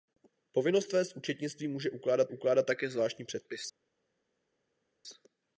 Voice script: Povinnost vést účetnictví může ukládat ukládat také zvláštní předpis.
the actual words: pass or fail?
pass